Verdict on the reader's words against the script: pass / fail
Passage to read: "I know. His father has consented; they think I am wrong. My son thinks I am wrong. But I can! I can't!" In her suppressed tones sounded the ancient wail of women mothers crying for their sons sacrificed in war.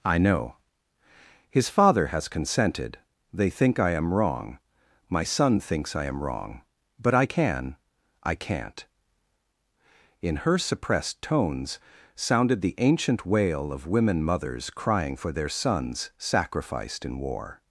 pass